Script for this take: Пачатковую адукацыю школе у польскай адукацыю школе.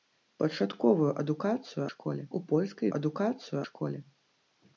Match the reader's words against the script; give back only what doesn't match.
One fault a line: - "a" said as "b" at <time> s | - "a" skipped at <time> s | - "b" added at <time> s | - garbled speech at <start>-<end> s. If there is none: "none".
none